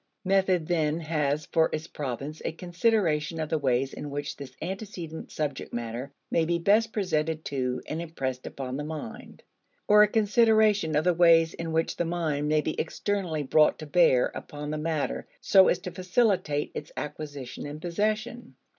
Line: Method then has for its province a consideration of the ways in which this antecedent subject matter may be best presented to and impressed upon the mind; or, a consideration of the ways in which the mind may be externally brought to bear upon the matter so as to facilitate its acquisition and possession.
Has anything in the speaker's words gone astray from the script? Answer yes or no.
no